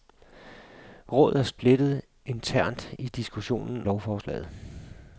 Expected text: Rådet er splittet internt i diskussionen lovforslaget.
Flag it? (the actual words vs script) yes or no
no